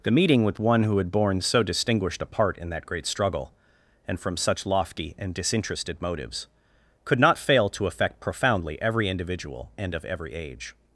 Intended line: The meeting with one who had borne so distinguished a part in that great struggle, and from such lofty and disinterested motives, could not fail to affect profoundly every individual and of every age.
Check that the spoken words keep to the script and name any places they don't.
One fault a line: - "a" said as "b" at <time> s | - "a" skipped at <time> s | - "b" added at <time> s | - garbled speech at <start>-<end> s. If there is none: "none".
none